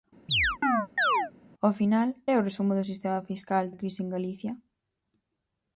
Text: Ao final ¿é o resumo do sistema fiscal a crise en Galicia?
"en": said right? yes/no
yes